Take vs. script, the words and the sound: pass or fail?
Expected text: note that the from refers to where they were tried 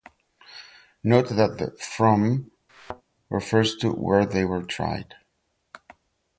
fail